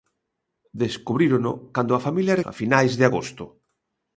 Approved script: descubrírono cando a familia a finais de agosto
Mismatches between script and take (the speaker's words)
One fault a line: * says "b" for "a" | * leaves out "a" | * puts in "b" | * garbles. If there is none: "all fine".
all fine